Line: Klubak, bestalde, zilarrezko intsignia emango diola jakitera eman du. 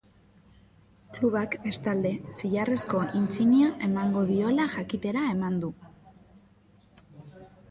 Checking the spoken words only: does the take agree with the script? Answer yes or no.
yes